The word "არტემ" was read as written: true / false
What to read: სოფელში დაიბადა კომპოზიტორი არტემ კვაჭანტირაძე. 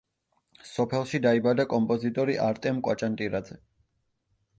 true